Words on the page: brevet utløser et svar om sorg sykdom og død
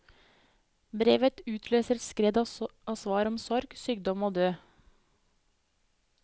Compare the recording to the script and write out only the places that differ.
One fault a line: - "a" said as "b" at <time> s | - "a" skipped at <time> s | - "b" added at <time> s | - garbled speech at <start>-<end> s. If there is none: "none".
- "skred av" added at 2.0 s